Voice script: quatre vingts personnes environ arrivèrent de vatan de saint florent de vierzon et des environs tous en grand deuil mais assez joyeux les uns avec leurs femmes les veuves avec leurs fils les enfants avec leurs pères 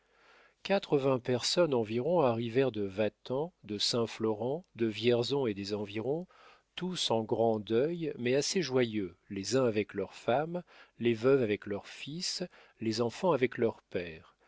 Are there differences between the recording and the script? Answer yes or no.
no